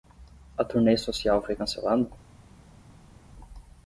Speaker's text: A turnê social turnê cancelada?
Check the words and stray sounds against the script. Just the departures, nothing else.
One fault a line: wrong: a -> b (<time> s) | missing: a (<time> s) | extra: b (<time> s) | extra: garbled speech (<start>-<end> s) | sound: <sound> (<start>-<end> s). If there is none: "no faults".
wrong: turnê -> foi (1.4 s)